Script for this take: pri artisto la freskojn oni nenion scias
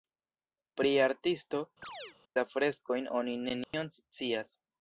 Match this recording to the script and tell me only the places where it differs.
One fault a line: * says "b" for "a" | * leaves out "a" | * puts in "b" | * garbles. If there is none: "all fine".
all fine